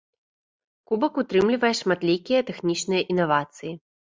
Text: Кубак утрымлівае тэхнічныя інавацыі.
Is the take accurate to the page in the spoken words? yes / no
no